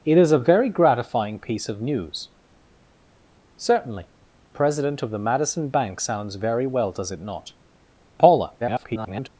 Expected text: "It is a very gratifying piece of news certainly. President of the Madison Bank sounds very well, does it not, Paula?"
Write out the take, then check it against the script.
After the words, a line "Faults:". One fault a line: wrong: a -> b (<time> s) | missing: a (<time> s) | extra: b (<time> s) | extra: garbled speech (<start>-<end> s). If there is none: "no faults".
"It is a very gratifying piece of news certainly. President of the Madison Bank sounds very well, does it not, Paula?" [garbled]
Faults:
extra: garbled speech (8.6-9.3 s)